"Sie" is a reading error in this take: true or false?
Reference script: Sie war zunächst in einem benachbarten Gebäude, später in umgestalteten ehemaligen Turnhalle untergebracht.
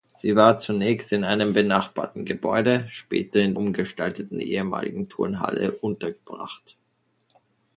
false